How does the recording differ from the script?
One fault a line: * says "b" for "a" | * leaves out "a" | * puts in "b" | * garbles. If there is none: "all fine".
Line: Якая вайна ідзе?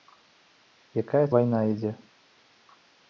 all fine